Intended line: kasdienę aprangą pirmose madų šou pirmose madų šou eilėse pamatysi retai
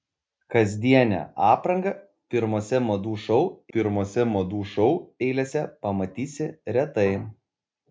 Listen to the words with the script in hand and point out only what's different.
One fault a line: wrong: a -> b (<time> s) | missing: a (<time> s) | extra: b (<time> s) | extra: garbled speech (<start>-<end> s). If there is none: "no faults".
no faults